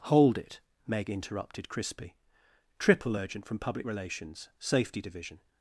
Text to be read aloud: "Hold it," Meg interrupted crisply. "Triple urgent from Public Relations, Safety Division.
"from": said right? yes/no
yes